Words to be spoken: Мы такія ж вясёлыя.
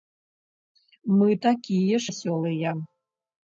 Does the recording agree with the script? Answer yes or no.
no